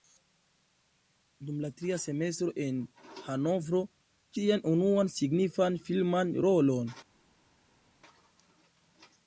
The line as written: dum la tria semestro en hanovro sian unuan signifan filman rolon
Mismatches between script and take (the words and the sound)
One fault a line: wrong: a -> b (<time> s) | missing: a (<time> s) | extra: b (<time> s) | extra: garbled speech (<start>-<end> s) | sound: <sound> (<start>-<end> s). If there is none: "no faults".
no faults